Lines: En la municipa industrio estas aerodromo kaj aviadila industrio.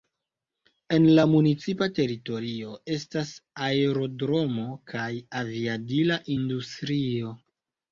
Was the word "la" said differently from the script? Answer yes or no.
no